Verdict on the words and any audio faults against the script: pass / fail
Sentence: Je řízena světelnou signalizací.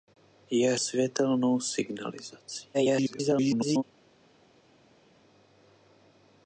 fail